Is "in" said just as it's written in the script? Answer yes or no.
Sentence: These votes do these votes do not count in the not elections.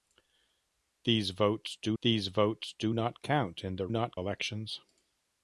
yes